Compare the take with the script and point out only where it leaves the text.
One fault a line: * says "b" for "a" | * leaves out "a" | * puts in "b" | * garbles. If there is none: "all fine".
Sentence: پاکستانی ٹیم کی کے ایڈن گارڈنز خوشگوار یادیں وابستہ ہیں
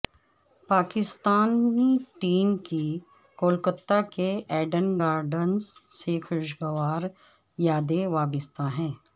* puts in "کولکتہ"
* puts in "سے"